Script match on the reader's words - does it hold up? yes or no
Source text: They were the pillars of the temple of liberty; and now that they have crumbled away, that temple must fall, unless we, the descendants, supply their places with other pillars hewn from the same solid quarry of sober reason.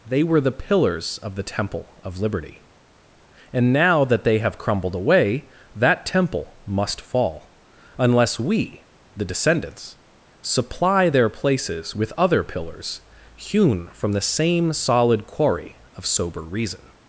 yes